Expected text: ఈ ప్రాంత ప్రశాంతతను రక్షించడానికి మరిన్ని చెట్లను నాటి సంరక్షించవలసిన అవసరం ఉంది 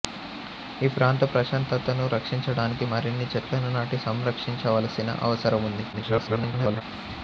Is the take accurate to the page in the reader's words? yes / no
no